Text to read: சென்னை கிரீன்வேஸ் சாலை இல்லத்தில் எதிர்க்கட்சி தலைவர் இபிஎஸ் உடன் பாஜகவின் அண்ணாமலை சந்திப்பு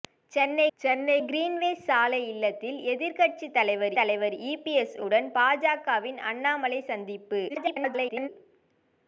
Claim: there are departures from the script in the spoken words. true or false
true